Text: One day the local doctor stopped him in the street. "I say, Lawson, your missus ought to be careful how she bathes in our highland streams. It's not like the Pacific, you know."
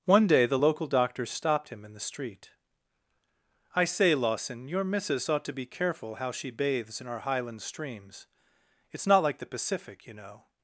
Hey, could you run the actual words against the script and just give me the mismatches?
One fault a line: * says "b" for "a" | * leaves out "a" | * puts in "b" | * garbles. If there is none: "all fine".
all fine